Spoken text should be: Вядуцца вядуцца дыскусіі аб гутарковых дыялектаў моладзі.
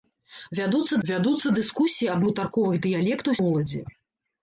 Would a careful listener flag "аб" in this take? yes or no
no